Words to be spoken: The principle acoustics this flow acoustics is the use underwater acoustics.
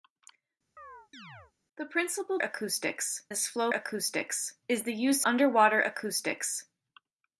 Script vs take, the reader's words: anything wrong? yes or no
no